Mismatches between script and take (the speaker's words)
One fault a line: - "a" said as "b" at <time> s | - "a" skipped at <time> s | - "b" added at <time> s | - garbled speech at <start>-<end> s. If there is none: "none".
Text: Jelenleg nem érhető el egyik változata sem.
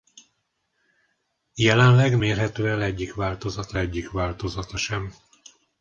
- "nem" skipped at 2.2 s
- "egyik változata" added at 3.8 s